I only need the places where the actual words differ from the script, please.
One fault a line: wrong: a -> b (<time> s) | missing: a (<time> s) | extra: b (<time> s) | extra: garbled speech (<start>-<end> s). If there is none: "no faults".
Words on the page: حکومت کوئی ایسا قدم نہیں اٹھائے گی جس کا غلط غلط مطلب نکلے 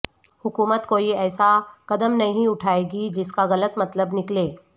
missing: غلط (3.8 s)